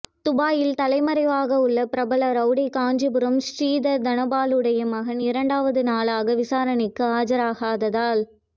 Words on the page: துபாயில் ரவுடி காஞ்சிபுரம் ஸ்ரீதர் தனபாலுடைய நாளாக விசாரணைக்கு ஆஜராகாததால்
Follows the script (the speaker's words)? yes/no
no